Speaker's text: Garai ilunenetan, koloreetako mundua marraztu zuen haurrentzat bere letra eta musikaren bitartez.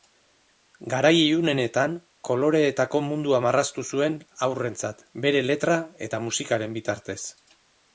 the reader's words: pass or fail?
pass